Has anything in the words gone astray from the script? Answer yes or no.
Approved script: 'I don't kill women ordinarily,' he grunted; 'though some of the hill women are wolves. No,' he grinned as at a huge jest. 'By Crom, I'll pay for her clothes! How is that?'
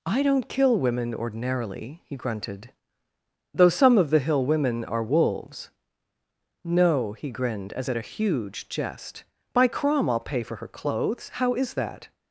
no